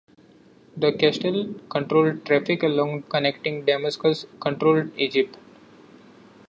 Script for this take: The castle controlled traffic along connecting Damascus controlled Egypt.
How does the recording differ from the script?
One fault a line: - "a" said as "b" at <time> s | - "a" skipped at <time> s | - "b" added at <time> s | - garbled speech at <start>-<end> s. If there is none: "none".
none